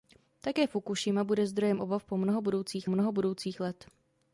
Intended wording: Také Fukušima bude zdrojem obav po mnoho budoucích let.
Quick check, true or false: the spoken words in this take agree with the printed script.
false